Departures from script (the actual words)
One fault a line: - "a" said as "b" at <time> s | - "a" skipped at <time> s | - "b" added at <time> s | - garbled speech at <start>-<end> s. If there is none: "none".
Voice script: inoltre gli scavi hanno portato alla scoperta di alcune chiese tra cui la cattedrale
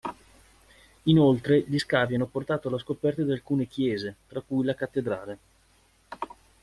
none